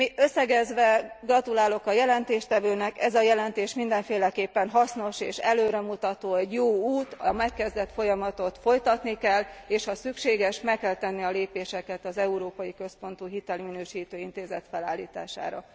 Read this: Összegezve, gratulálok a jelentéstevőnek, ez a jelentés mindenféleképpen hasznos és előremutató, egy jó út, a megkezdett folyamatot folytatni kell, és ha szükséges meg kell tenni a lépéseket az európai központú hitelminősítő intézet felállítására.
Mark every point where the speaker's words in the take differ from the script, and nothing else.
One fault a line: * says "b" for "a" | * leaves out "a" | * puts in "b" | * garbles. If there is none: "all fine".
all fine